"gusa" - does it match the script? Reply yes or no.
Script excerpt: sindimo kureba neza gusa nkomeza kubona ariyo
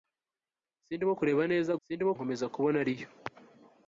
no